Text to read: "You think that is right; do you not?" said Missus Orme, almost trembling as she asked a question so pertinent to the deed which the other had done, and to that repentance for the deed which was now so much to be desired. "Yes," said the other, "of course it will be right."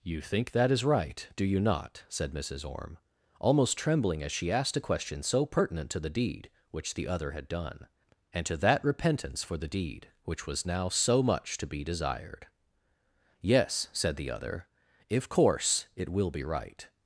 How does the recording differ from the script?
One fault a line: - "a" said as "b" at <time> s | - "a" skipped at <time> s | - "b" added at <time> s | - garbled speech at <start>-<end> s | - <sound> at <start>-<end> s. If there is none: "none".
- "of" said as "if" at 15.1 s